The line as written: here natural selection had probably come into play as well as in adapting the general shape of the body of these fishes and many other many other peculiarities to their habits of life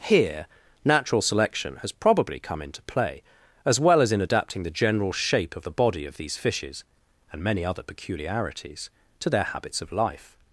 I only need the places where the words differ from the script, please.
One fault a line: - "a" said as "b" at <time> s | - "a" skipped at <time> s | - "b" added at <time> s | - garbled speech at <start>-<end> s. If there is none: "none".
- "had" said as "has" at 1.8 s
- "many other" skipped at 7.8 s